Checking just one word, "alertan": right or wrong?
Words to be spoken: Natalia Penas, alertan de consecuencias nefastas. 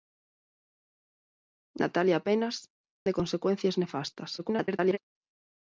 wrong